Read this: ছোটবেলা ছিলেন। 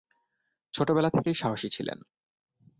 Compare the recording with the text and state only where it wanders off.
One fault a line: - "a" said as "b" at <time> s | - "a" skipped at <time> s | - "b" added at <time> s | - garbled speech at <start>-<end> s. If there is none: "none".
- "থেকেই সাহসী" added at 1.1 s